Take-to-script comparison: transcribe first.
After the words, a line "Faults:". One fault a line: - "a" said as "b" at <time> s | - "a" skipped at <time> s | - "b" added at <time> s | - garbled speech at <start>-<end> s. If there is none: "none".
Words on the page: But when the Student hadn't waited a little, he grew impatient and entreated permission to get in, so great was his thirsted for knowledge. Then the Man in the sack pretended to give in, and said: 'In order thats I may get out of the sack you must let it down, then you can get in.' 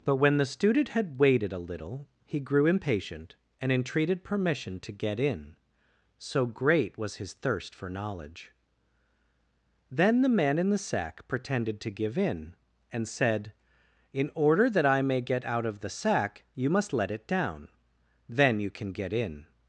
But when the Student had waited a little, he grew impatient and entreated permission to get in, so great was his thirst for knowledge. Then the Man in the sack pretended to give in, and said: 'In order that I may get out of the sack you must let it down, then you can get in.'
Faults:
- "hadn't" said as "had" at 0.9 s
- "thirsted" said as "thirst" at 7.3 s
- "thats" said as "that" at 14.7 s